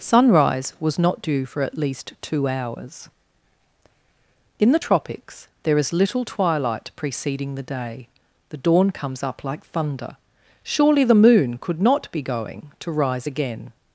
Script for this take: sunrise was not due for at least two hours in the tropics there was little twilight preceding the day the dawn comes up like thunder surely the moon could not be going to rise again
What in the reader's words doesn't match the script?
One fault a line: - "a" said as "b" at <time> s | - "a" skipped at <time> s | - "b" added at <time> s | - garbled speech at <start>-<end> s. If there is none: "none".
- "was" said as "is" at 5.8 s